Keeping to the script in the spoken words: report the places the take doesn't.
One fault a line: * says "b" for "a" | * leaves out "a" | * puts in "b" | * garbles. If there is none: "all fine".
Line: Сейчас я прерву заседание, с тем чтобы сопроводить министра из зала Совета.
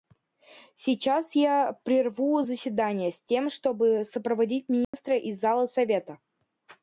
all fine